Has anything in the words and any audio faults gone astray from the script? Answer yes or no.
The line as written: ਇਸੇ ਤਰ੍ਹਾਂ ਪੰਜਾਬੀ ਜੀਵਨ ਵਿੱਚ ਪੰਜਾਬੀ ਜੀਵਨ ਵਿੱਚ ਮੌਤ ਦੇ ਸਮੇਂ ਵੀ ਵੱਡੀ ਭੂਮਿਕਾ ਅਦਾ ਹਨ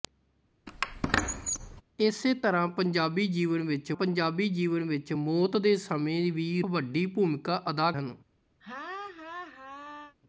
yes